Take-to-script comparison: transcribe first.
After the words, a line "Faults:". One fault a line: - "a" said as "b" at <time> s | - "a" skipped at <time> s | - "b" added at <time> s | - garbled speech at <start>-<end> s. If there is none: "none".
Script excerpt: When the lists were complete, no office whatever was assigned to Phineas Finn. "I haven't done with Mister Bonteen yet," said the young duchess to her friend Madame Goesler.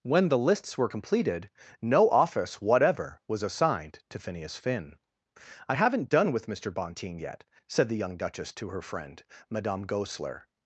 When the lists were completed, no office whatever was assigned to Phineas Finn. "I haven't done with Mister Bonteen yet," said the young duchess to her friend Madame Goesler.
Faults:
- "complete" said as "completed" at 0.9 s